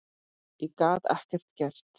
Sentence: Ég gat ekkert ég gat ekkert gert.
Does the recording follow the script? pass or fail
fail